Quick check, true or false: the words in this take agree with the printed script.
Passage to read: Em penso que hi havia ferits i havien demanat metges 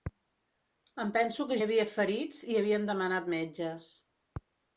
true